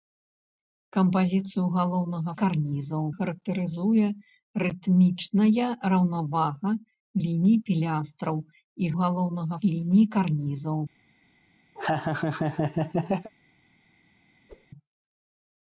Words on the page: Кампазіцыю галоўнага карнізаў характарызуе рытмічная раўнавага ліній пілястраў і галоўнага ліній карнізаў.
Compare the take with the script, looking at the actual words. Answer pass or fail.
pass